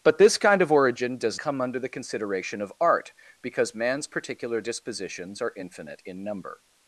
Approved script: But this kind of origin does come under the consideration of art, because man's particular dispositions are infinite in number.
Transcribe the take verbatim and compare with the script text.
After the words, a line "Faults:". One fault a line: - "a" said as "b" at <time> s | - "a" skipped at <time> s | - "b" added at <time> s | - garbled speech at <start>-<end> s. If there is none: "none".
But this kind of origin does come under the consideration of art, because man's particular dispositions are infinite in number.
Faults:
none